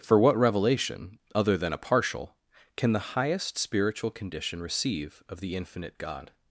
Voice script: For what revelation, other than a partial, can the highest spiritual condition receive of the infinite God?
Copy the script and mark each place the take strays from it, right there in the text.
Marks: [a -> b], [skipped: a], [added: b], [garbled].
For what revelation, other than a partial, can the highest spiritual condition receive of the infinite God?